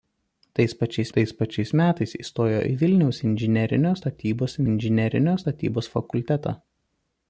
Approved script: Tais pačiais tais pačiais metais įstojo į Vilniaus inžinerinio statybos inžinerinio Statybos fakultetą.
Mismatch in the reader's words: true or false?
false